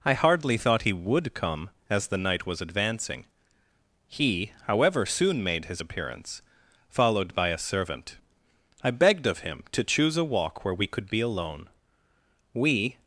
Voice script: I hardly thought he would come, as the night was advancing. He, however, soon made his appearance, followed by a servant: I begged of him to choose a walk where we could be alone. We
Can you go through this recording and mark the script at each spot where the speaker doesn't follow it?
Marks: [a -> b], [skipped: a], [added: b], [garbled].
I hardly thought he would come, as the night was advancing. He, however, soon made his appearance, followed by a servant: I begged of him to choose a walk where we could be alone. We